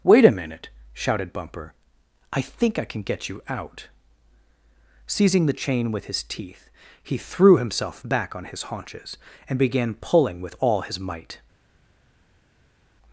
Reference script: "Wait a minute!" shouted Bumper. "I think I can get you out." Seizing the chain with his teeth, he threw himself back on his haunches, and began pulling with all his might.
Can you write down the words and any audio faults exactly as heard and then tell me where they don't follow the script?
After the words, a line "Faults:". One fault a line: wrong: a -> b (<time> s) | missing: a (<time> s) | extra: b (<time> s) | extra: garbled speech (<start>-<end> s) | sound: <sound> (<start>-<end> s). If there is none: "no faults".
"Wait a minute!" shouted Bumper. "I think I can get you out." Seizing the chain with his teeth, he threw himself back on his haunches, and began pulling with all his might.
Faults:
no faults